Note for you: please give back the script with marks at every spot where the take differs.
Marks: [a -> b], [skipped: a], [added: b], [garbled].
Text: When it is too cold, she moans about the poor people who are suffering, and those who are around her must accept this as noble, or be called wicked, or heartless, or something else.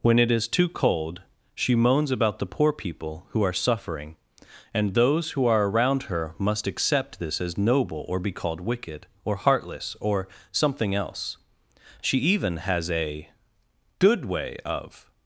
When it is too cold, she moans about the poor people who are suffering, and those who are around her must accept this as noble, or be called wicked, or heartless, or something else. [added: She even has a Good way of]